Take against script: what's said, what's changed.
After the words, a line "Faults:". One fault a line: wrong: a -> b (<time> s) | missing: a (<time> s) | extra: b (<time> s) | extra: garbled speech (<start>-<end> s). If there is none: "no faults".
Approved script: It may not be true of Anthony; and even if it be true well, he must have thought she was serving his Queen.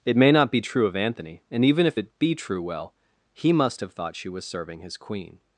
It may not be true of Anthony; and even if it be true well, he must have thought she was serving his Queen.
Faults:
no faults